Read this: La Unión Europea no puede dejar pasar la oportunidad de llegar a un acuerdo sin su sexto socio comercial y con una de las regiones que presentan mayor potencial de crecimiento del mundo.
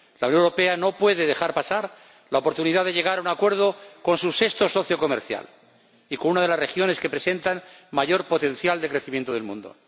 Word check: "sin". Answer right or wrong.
wrong